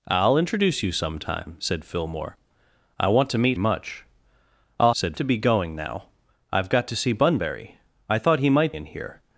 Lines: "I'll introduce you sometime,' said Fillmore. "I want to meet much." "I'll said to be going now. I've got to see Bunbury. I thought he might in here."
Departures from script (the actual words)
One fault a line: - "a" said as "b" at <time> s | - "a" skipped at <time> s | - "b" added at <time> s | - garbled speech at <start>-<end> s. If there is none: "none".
none